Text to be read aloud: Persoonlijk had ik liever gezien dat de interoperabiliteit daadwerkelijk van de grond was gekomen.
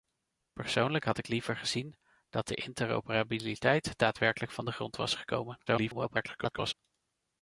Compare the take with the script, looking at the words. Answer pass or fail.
fail